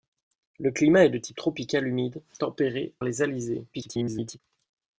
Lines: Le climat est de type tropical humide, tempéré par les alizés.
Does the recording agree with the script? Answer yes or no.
no